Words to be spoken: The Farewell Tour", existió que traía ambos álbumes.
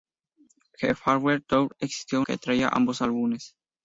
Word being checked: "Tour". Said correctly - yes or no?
yes